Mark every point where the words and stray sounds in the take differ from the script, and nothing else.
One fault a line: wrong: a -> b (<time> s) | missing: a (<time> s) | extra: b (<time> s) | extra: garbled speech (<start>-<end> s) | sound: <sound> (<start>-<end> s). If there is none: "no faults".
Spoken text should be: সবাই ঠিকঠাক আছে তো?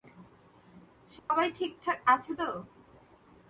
sound: dropout (1.2-1.3 s)